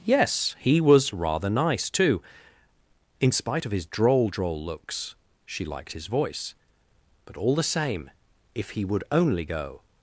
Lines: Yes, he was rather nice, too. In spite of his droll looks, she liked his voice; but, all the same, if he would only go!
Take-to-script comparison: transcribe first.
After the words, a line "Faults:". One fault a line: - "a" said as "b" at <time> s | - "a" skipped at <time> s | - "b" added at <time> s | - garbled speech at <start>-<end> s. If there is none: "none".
Yes, he was rather nice, too. In spite of his droll droll looks, she liked his voice; but, all the same, if he would only go!
Faults:
- "droll" added at 4.3 s